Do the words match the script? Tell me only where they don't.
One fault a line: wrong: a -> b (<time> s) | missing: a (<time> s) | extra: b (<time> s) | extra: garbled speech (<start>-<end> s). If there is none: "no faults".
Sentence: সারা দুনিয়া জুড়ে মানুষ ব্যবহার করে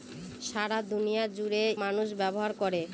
no faults